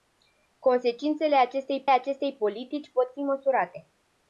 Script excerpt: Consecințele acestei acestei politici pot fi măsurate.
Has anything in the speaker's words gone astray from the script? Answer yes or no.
no